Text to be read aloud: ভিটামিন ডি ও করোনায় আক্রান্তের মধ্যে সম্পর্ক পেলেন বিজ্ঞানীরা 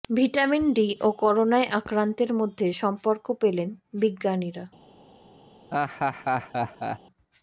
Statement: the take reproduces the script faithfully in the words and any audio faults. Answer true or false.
false